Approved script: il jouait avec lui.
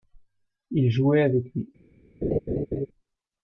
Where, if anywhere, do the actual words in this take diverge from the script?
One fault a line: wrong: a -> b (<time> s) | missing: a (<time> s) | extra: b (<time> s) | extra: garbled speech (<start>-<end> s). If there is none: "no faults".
no faults